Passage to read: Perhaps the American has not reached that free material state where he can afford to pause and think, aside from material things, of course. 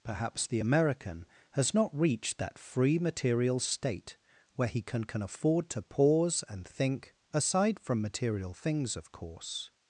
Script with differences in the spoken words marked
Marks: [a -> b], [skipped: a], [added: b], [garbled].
Perhaps the American has not reached that free material state where he can [added: can] afford to pause and think, aside from material things, of course.